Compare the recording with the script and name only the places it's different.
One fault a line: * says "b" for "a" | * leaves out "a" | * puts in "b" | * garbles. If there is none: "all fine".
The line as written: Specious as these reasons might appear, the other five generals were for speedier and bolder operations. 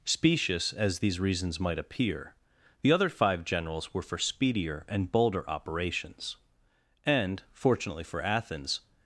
* puts in "And fortunately for Athens"